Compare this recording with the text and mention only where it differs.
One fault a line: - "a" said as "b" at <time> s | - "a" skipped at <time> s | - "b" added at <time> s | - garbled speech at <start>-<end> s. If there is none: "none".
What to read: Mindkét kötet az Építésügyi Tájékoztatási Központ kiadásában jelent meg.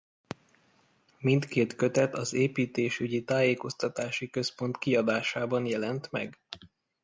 none